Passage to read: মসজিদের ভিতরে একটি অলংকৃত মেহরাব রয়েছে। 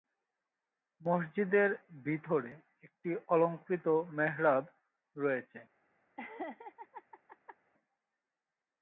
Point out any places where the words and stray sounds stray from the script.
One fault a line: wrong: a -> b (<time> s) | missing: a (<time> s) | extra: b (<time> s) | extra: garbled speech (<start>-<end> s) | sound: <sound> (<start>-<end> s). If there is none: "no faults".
sound: laugh (6.2-7.6 s)